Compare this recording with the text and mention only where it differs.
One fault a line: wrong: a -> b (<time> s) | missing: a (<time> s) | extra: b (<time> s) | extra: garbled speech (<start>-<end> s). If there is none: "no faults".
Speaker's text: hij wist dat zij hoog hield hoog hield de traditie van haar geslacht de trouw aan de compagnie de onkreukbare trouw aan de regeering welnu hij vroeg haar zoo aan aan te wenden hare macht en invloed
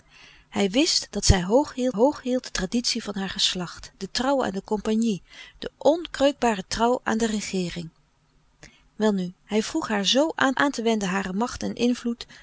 no faults